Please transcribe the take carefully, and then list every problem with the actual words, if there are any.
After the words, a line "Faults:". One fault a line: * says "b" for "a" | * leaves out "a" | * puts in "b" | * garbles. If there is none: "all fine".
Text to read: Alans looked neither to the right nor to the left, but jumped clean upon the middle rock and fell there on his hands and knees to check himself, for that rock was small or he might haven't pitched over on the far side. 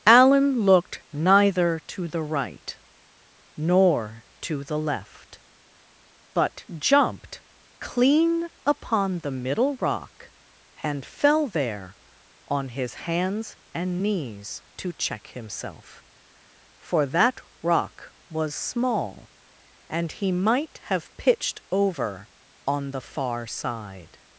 Alan looked neither to the right nor to the left, but jumped clean upon the middle rock and fell there on his hands and knees to check himself, for that rock was small and he might have pitched over on the far side.
Faults:
* says "Alan" for "Alans"
* says "and" for "or"
* says "have" for "haven't"